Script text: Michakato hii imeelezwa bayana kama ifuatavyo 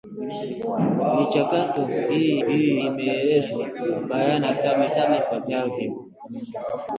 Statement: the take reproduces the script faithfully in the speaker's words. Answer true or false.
false